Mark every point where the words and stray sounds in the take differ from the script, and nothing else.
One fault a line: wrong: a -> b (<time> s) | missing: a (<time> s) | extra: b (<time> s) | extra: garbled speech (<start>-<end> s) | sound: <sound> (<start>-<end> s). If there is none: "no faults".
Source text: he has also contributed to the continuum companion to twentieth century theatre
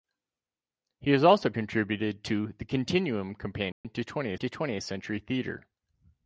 sound: dropout (3.7-3.8 s)
extra: to twentieth (4.3 s)